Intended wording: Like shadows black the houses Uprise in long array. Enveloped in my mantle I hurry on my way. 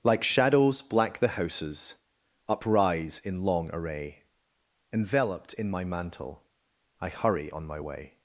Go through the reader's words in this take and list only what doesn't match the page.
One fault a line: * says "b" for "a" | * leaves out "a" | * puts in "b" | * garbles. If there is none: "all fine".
all fine